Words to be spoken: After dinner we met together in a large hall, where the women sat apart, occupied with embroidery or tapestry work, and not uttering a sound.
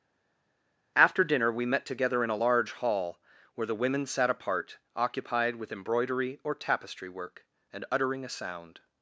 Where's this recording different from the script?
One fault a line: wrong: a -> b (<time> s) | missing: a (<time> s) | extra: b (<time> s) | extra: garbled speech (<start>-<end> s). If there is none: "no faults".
missing: not (7.8 s)